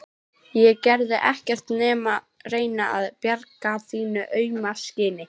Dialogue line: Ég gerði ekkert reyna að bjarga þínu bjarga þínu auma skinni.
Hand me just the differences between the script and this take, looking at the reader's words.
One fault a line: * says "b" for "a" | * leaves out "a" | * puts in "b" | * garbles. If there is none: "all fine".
* puts in "nema"
* leaves out "bjarga þínu"